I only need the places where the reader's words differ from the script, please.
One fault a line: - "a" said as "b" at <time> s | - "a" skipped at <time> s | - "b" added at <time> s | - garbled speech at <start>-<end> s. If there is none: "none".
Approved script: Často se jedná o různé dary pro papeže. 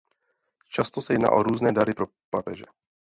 none